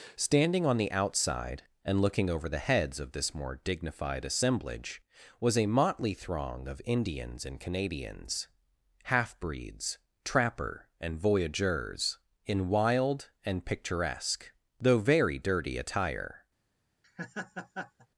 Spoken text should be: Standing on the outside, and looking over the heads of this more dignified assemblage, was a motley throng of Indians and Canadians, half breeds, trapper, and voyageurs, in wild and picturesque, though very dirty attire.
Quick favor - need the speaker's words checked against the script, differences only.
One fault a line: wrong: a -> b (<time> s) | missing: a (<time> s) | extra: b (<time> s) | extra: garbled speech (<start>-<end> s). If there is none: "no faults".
no faults